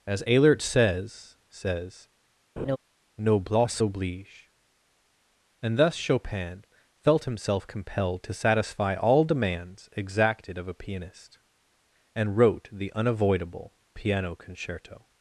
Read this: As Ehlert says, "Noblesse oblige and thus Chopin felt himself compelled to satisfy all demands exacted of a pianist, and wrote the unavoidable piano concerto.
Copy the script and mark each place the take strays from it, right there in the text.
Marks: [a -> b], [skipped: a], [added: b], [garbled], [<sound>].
As Ehlert says, [added: says] [laugh] "Noblesse oblige and thus Chopin felt himself compelled to satisfy all demands exacted of a pianist, and wrote the unavoidable piano concerto.